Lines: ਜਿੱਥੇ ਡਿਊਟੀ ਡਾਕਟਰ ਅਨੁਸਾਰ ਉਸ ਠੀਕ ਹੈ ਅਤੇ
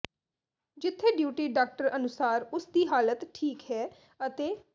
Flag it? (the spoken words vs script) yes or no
yes